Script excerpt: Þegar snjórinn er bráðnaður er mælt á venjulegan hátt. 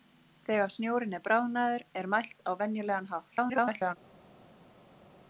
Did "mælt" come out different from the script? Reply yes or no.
no